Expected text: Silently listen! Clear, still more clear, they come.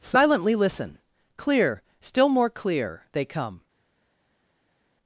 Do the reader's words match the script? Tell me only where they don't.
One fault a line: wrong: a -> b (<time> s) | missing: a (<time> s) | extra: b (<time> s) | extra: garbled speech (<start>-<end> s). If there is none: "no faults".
no faults